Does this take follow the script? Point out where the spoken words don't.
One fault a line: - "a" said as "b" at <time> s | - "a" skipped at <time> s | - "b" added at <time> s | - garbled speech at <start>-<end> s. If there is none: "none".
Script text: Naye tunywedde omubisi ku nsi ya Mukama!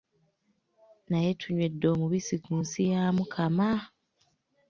none